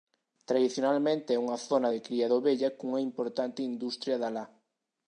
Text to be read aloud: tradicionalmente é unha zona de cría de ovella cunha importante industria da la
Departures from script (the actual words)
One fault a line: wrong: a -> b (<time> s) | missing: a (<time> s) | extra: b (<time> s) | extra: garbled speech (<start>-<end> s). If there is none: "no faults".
no faults